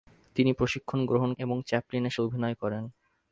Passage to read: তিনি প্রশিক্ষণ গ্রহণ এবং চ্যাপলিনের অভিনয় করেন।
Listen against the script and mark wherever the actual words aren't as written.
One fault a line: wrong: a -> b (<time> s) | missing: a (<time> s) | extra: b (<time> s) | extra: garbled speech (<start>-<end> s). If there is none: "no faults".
no faults